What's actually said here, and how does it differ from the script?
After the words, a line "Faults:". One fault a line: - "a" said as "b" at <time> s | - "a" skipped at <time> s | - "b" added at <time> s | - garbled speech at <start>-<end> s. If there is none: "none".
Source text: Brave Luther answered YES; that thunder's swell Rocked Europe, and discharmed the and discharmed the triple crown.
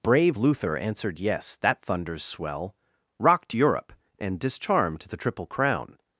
Brave Luther answered YES; that thunder's swell Rocked Europe, and discharmed the triple crown.
Faults:
- "and discharmed the" skipped at 5.2 s